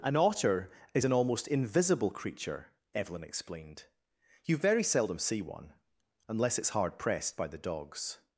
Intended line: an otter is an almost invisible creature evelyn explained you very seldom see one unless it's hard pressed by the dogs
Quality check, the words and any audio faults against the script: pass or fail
pass